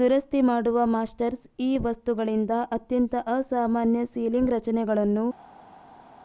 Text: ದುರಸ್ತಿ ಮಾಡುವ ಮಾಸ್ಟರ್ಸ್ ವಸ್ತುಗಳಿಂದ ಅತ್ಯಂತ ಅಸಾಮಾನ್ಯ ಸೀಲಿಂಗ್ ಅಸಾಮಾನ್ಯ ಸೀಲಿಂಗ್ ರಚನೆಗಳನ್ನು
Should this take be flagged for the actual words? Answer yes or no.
yes